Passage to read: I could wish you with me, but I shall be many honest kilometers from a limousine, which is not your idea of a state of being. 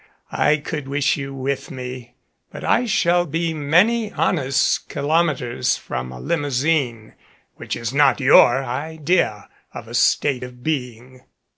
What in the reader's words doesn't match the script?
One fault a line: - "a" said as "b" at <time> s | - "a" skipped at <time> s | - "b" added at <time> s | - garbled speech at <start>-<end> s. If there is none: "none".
none